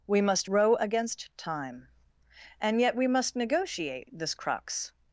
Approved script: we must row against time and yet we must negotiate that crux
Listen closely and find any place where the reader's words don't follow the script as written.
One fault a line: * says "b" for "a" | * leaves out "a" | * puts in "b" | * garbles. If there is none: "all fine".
* says "this" for "that"